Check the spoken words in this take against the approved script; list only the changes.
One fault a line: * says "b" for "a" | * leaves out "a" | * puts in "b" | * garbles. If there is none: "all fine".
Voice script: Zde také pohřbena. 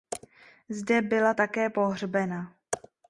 * puts in "byla"